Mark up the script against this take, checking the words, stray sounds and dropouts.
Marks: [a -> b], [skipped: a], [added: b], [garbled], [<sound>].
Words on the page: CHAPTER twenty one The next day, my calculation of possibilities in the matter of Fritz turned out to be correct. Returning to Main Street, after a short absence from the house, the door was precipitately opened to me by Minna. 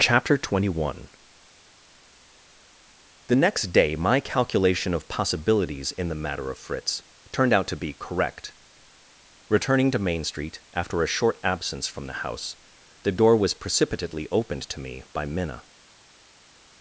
CHAPTER twenty one The next day, my calculation of possibilities in the matter of Fritz turned out to be correct. Returning to Main Street, after a short absence from the house, the door was precipitately opened to me by Minna.